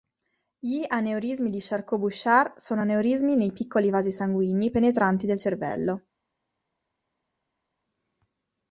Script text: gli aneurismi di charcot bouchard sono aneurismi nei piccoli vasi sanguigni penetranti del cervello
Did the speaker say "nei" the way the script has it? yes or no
yes